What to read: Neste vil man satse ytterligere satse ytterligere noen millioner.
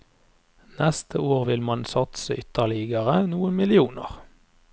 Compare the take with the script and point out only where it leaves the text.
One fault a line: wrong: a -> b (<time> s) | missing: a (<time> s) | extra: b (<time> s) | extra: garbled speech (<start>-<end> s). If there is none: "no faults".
extra: år (1.2 s)
missing: satse ytterligere (3.2 s)